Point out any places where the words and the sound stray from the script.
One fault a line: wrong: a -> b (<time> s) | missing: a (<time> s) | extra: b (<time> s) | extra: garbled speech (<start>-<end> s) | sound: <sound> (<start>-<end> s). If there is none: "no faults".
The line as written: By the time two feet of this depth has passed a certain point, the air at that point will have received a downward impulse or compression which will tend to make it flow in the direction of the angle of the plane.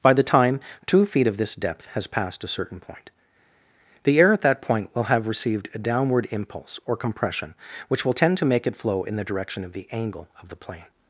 no faults